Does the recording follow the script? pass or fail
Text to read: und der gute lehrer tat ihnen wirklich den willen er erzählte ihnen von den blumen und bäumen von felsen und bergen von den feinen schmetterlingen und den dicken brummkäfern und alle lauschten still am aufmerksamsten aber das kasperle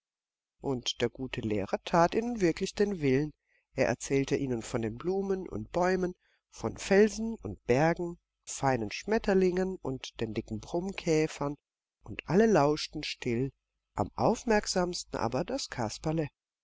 fail